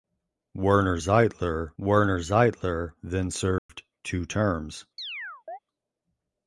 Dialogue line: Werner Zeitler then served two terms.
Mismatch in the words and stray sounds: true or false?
true